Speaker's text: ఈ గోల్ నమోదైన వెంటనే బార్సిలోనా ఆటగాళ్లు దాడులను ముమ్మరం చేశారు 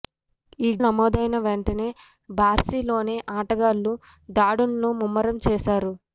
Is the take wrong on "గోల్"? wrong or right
wrong